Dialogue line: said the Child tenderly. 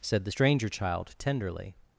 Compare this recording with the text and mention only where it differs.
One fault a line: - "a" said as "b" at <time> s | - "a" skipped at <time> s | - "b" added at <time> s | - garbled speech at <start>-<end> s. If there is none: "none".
- "Stranger" added at 0.3 s